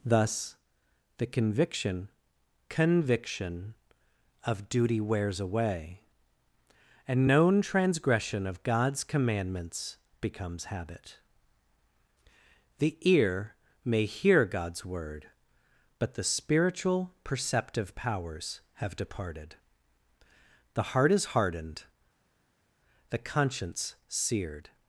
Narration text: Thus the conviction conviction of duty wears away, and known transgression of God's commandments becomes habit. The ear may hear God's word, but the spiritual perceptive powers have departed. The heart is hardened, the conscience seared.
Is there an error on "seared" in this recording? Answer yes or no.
no